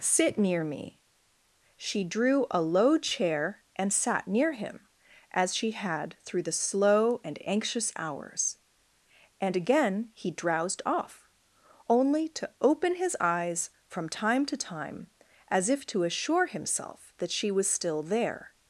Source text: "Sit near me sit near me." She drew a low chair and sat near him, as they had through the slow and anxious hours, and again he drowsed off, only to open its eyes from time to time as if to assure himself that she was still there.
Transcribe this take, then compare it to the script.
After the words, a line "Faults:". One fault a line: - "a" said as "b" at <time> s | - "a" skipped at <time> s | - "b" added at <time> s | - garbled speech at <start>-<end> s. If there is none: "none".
"Sit near me." She drew a low chair and sat near him, as she had through the slow and anxious hours, and again he drowsed off, only to open his eyes from time to time as if to assure himself that she was still there.
Faults:
- "sit near me" skipped at 1.0 s
- "they" said as "she" at 5.5 s
- "its" said as "his" at 13.0 s